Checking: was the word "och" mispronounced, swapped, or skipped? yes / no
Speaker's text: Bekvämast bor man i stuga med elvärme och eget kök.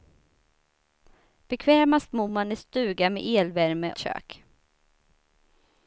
yes